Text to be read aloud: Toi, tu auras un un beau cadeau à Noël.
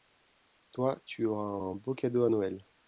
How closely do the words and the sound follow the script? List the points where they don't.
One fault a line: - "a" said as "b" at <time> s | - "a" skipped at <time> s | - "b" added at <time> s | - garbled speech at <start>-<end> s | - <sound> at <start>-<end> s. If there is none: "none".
none